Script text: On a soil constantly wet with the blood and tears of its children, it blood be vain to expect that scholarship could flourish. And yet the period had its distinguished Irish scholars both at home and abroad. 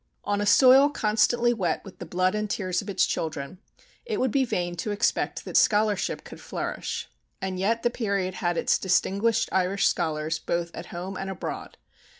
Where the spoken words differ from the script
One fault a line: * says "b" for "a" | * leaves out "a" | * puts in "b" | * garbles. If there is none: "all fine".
* says "would" for "blood"